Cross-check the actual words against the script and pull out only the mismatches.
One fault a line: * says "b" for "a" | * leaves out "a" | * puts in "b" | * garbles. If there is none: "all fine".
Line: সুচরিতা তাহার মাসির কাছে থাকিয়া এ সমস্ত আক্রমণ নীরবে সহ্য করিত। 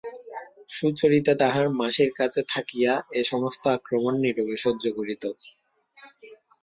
all fine